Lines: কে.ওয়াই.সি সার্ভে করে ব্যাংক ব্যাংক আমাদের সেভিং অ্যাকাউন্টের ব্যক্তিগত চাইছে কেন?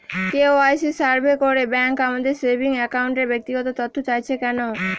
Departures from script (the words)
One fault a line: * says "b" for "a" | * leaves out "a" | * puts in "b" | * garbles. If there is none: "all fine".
* leaves out "ব্যাংক"
* puts in "তথ্য"